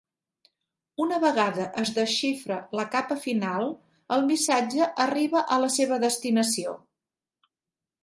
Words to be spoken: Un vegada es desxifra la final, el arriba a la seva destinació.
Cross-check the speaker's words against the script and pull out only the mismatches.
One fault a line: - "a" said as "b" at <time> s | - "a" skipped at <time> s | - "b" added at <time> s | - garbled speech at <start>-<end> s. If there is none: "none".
- "Un" said as "Una" at 1.0 s
- "capa" added at 3.0 s
- "missatge" added at 4.3 s